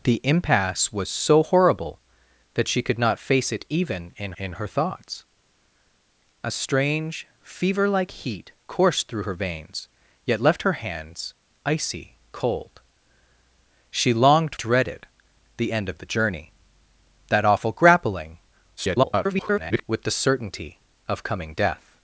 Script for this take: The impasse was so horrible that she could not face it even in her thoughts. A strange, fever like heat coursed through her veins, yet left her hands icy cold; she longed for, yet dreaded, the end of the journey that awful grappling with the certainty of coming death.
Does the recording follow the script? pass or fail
fail